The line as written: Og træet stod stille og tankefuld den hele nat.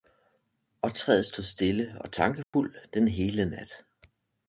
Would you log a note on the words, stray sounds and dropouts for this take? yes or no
yes